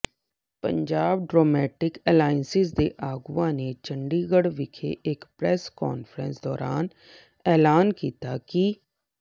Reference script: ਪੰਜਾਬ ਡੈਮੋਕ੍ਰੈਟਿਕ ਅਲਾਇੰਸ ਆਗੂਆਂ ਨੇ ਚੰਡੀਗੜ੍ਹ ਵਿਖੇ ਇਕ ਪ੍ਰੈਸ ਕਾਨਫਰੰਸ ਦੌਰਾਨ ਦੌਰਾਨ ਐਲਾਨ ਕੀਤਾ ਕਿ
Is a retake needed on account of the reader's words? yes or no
yes